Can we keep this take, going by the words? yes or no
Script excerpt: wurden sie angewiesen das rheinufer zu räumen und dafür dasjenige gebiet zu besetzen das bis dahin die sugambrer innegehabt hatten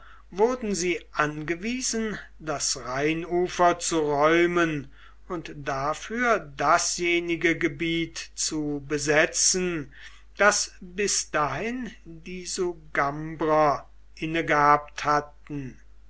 yes